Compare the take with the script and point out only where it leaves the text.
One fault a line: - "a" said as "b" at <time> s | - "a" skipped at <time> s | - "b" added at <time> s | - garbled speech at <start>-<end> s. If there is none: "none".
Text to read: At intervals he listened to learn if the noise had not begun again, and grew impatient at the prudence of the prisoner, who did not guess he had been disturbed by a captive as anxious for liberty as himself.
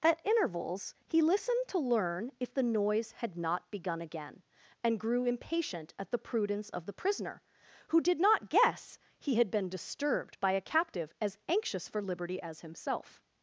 none